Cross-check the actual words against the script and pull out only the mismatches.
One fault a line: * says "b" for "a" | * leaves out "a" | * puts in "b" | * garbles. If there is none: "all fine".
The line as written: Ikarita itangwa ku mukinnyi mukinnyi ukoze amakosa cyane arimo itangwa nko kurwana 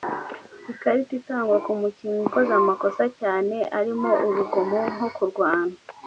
* leaves out "mukinnyi"
* says "urugomo" for "itangwa"